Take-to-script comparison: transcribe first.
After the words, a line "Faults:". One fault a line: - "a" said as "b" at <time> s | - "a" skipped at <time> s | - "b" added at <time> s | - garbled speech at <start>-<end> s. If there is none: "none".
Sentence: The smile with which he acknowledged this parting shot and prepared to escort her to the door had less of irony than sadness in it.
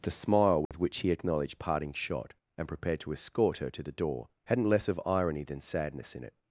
The smile with which he acknowledged parting shot and prepared to escort her to the door hadn't less of irony than sadness in it.
Faults:
- "this" skipped at 1.6 s
- "had" said as "hadn't" at 4.5 s